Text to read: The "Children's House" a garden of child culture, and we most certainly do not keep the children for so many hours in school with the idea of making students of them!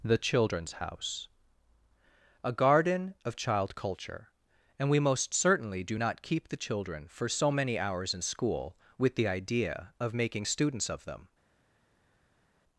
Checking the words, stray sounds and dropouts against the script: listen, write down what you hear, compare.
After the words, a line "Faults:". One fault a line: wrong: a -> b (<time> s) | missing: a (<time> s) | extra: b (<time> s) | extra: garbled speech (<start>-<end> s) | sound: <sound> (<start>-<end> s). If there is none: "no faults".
The "Children's House" a garden of child culture, and we most certainly do not keep the children for so many hours in school with the idea of making students of them!
Faults:
no faults